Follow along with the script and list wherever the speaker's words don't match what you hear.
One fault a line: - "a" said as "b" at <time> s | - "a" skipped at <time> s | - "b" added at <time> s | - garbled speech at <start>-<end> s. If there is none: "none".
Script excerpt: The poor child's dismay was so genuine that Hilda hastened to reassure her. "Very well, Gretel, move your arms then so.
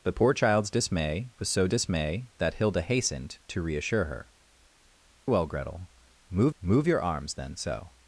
- "genuine" said as "dismay" at 1.7 s
- "Very" skipped at 4.3 s
- "move" added at 6.6 s